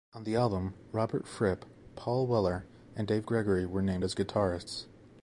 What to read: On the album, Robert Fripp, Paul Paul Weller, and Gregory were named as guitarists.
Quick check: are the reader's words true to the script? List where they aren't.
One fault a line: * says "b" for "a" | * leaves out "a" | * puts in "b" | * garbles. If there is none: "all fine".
* leaves out "Paul"
* puts in "Dave"